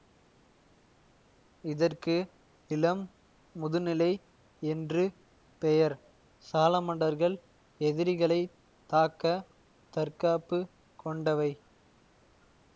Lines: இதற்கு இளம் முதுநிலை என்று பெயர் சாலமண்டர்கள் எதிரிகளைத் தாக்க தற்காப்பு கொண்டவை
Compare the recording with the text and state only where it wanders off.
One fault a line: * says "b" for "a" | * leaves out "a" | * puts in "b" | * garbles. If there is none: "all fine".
all fine